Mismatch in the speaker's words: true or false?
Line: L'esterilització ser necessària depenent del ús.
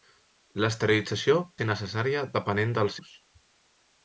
false